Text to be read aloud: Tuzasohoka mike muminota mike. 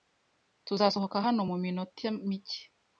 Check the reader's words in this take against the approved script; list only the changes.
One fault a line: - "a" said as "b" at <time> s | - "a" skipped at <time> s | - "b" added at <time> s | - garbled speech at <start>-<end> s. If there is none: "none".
- "mike" said as "hano" at 1.2 s